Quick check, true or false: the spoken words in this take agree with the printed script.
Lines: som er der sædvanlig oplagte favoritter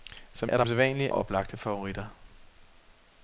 true